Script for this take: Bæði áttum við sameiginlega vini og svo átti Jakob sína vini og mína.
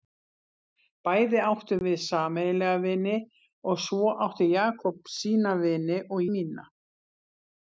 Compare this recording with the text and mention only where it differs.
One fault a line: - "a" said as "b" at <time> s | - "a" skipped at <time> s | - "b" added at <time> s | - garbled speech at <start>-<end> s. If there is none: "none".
none